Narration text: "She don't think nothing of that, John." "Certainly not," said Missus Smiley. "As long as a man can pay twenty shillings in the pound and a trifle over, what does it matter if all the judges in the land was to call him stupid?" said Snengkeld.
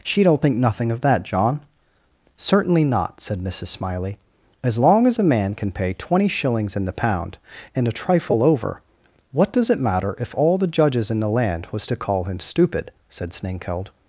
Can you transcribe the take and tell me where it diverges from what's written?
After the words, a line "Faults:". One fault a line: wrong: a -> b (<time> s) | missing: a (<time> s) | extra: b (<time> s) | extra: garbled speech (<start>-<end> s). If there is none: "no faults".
"She don't think nothing of that, John." "Certainly not," said Missus Smiley. "As long as a man can pay twenty shillings in the pound and a trifle over, what does it matter if all the judges in the land was to call him stupid?" said Snengkeld.
Faults:
no faults